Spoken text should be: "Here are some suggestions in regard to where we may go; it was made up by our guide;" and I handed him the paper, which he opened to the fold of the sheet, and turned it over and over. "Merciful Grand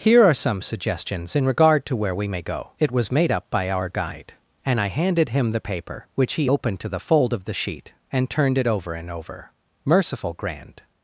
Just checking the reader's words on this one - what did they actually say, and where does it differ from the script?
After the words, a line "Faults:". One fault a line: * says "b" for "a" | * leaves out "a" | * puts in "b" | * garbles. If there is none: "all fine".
"Here are some suggestions in regard to where we may go; it was made up by our guide;" and I handed him the paper, which he opened to the fold of the sheet, and turned it over and over. "Merciful Grand
Faults:
all fine